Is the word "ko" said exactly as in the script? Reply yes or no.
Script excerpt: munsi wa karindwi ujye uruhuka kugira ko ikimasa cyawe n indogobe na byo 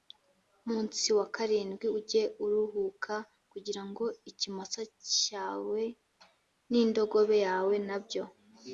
no